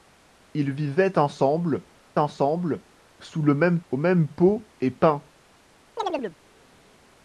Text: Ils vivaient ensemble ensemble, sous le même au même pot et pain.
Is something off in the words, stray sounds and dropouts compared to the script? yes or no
yes